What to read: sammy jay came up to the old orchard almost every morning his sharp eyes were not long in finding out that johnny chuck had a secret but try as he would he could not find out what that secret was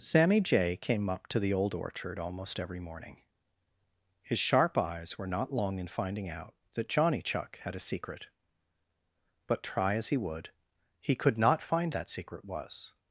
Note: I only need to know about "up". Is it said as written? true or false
true